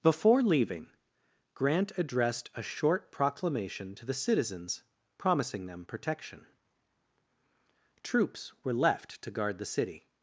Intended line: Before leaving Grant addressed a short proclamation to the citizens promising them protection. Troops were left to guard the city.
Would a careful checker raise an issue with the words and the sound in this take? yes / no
no